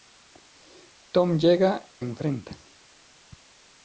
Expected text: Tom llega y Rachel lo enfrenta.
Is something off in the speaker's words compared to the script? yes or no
yes